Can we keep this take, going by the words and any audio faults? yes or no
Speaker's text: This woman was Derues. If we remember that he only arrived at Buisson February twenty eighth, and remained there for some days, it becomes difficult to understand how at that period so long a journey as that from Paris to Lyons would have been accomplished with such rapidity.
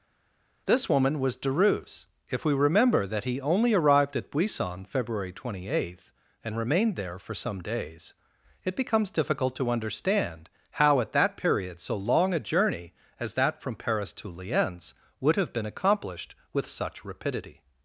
yes